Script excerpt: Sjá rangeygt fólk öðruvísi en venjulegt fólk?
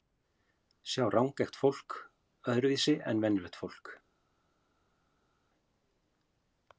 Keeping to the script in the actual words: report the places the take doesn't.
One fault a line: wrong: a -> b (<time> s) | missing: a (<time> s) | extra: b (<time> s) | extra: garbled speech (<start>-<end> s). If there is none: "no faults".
no faults